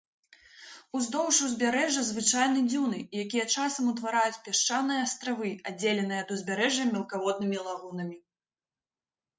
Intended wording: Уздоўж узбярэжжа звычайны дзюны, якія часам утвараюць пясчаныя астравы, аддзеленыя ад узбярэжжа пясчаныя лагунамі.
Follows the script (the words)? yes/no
no